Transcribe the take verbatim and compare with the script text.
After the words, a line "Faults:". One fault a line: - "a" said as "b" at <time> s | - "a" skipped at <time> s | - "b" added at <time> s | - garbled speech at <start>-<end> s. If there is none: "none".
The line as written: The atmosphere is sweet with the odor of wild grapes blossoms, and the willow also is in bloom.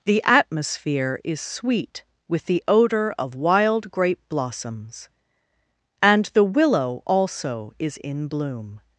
The atmosphere is sweet with the odor of wild grape blossoms, and the willow also is in bloom.
Faults:
- "grapes" said as "grape" at 3.9 s